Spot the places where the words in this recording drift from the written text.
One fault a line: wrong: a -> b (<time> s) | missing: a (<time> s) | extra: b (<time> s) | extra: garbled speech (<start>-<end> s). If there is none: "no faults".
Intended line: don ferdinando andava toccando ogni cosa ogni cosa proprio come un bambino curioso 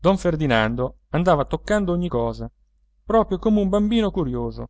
missing: ogni cosa (2.5 s)